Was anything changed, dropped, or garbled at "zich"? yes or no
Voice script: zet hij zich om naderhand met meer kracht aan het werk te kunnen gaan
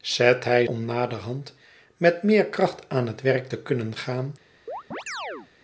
yes